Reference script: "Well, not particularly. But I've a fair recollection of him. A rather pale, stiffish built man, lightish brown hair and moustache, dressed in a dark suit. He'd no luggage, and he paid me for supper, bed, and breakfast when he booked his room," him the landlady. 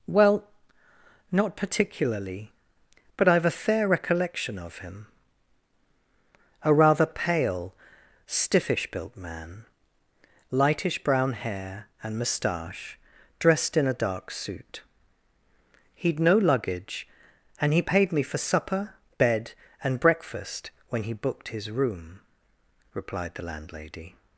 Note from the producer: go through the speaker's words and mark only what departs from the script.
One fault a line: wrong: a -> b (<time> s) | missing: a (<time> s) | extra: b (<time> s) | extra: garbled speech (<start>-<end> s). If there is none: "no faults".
wrong: him -> replied (22.9 s)